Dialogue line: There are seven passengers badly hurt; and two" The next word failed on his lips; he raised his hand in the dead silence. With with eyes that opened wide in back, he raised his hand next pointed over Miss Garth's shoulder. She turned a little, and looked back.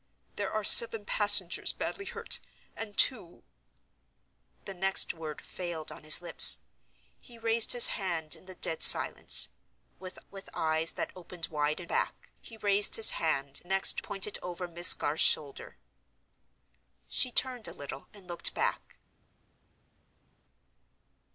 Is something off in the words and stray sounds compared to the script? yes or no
no